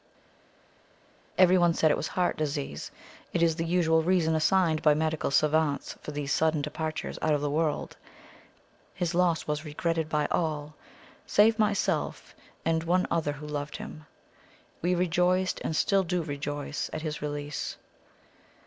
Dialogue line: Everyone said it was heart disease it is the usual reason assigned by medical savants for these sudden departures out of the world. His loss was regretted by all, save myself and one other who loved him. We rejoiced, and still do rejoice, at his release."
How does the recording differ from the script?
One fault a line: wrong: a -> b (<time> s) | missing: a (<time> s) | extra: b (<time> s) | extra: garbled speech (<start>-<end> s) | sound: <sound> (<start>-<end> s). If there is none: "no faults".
no faults